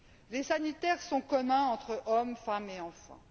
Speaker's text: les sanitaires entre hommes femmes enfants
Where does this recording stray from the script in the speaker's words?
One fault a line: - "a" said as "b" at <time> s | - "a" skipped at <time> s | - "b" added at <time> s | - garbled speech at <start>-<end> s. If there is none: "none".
- "sont communs" added at 1.0 s
- "et" added at 2.7 s